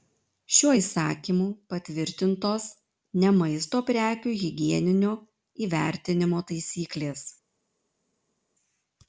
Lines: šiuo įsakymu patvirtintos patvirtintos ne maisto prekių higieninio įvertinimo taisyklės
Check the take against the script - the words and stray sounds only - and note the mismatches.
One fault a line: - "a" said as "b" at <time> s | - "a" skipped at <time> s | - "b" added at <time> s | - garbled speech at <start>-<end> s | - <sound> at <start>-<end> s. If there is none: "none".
- "patvirtintos" skipped at 2.7 s